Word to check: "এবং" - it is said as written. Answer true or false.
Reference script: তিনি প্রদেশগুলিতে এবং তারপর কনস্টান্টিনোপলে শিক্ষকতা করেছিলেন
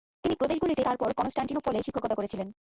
false